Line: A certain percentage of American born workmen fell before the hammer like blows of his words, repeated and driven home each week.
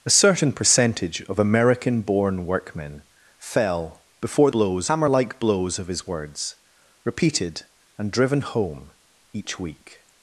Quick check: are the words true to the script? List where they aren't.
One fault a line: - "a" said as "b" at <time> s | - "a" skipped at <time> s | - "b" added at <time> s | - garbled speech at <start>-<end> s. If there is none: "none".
- "the" said as "blows" at 4.5 s